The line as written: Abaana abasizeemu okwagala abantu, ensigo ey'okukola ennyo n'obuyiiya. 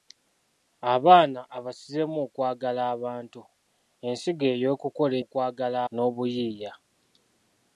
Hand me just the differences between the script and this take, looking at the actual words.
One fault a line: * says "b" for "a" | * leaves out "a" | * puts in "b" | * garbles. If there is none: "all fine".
* says "okwagala" for "ennyo"